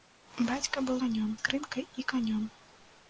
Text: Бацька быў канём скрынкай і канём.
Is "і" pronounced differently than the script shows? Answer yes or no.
no